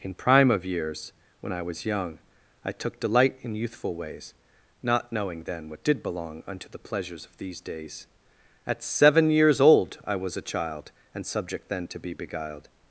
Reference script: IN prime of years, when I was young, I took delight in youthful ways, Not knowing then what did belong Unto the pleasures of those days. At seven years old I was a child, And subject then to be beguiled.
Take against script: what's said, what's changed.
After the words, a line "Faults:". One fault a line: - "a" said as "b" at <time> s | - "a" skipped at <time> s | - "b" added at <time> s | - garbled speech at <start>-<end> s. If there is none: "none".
IN prime of years, when I was young, I took delight in youthful ways, Not knowing then what did belong Unto the pleasures of these days. At seven years old I was a child, And subject then to be beguiled.
Faults:
- "those" said as "these" at 7.4 s